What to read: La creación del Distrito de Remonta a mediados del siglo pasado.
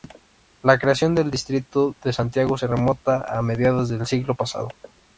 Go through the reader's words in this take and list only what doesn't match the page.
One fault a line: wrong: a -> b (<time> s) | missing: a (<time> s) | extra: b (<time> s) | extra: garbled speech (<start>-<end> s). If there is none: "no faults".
extra: Santiago se (2.1 s)